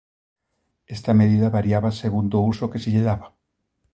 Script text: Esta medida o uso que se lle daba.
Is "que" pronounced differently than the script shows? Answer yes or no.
no